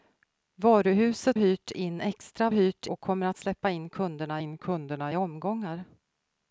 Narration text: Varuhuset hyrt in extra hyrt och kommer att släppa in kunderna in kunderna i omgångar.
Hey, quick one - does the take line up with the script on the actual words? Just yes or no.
yes